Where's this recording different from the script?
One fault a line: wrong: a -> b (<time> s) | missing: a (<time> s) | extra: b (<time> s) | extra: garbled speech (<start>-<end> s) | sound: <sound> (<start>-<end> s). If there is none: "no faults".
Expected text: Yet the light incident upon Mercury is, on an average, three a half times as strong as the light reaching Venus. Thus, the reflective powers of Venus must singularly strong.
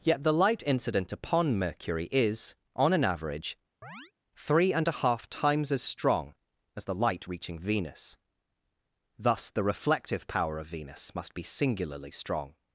sound: chirp (3.8-4.1 s)
extra: and (4.7 s)
wrong: powers -> power (10.3 s)
extra: be (11.3 s)